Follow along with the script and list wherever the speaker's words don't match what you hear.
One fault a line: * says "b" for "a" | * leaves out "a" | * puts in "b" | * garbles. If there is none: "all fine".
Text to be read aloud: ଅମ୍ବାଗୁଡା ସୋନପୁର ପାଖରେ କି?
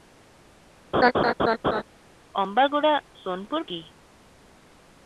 * leaves out "ପାଖରେ"